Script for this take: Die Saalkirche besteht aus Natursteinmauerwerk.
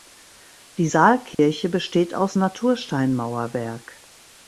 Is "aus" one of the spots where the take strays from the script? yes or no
no